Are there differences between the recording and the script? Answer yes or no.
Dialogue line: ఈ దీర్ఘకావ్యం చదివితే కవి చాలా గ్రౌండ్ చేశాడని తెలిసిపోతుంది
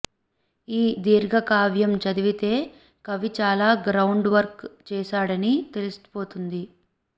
yes